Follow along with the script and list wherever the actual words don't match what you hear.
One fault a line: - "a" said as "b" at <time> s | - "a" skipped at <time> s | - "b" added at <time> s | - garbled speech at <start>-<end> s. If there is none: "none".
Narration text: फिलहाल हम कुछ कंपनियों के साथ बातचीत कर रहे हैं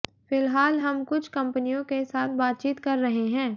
none